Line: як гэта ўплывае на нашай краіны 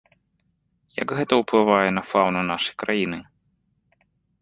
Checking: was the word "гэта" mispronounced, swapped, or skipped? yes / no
no